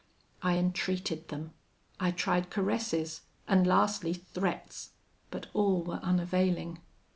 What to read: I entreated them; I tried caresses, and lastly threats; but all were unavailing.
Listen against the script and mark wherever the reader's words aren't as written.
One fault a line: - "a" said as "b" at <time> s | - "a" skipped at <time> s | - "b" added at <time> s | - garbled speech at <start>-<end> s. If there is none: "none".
none